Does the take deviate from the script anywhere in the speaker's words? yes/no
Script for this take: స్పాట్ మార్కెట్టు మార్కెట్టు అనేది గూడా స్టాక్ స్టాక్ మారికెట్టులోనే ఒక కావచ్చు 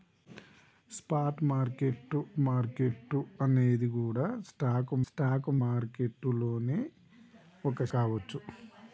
no